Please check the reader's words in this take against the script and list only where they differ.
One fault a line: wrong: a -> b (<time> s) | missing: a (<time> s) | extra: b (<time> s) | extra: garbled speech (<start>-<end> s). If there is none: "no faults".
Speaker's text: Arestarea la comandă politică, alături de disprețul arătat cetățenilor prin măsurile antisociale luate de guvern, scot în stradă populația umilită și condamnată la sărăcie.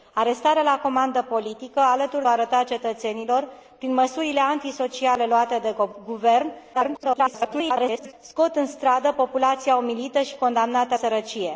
missing: de disprețul (2.2 s)
extra: garbled speech (6.7-8.1 s)
missing: la (11.0 s)